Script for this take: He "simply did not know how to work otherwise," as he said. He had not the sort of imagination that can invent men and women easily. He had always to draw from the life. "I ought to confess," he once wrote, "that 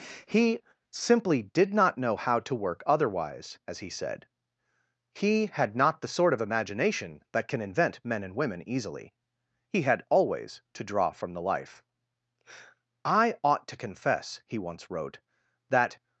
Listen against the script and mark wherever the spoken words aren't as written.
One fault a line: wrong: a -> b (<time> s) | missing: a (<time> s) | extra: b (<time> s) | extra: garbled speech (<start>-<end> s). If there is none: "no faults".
no faults